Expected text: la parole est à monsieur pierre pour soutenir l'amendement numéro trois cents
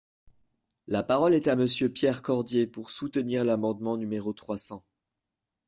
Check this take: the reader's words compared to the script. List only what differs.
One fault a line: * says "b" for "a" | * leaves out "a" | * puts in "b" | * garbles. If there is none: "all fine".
* puts in "cordier"